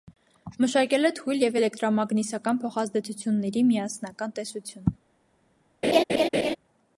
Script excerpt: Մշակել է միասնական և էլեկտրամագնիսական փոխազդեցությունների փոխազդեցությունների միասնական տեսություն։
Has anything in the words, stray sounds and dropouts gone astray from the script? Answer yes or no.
yes